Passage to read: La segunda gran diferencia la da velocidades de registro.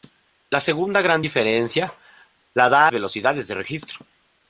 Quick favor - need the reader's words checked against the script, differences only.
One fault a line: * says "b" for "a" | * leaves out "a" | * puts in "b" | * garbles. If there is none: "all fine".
all fine